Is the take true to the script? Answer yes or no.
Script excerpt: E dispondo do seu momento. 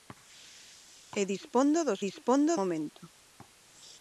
no